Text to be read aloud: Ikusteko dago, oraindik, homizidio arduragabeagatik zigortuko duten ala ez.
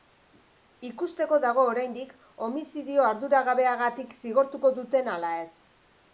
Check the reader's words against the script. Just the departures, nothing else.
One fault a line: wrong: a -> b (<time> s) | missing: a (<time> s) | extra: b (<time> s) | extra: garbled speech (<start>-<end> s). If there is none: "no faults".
no faults